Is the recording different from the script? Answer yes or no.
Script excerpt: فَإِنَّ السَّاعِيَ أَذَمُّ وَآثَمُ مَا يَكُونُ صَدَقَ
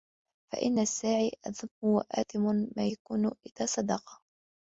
yes